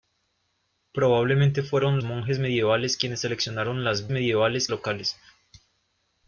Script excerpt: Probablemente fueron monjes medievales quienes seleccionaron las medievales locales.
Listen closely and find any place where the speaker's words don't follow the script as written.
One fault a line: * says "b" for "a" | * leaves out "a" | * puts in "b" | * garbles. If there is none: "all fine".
all fine